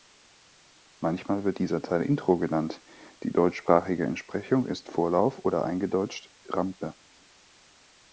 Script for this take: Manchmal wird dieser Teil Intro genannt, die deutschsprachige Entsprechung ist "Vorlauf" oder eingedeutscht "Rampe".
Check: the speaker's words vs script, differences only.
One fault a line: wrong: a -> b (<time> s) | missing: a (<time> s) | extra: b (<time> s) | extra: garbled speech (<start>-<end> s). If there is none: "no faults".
no faults